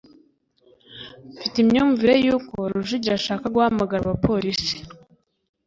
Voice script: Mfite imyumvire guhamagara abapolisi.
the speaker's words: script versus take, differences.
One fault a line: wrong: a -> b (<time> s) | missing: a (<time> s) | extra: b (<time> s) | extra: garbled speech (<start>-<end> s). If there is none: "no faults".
extra: yuko Rujugiro ashaka (2.2 s)